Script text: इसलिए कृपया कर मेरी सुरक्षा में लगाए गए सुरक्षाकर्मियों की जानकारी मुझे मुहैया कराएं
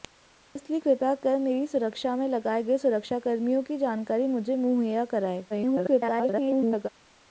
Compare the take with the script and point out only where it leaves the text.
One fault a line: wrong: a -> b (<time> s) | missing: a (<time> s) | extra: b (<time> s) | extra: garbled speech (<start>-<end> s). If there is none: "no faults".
extra: garbled speech (5.5-6.9 s)